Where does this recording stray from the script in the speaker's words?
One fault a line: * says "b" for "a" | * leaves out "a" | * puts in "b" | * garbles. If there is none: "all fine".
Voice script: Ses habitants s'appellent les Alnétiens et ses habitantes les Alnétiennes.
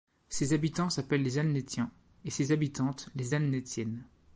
all fine